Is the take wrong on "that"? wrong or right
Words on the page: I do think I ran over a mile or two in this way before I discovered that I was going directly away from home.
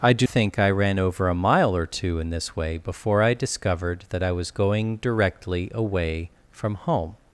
right